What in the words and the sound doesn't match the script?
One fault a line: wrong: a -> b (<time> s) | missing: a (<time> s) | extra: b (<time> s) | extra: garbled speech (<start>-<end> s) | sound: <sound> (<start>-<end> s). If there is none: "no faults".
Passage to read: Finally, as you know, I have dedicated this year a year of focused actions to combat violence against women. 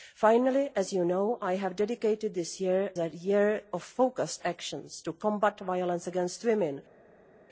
no faults